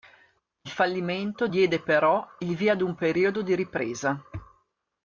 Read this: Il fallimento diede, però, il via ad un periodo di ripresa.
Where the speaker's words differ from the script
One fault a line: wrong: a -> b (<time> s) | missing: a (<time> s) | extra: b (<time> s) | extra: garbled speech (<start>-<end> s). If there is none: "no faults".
no faults